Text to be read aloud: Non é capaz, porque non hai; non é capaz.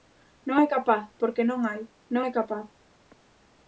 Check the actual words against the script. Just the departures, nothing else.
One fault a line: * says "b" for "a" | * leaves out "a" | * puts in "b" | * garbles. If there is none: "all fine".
all fine